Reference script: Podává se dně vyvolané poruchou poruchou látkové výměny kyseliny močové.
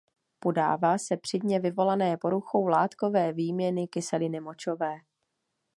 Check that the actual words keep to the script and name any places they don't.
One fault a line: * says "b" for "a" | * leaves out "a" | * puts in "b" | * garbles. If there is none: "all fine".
* puts in "při"
* leaves out "poruchou"